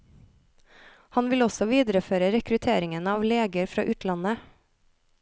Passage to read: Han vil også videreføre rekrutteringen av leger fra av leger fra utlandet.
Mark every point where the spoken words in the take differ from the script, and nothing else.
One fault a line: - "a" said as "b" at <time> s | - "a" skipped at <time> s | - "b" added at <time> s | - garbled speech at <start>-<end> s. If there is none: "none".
- "av leger fra" skipped at 3.9 s